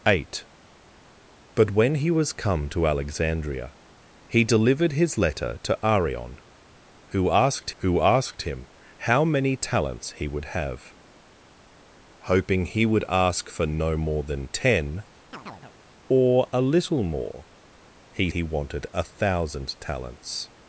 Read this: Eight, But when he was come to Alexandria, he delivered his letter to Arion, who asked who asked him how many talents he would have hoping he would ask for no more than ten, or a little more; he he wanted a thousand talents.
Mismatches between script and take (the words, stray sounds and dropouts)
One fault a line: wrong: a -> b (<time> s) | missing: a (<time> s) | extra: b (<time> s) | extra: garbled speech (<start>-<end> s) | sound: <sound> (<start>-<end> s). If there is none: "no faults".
sound: chirp (15.3-15.8 s)